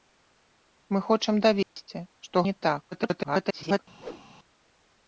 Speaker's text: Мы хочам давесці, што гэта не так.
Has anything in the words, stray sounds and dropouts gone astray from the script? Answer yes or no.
yes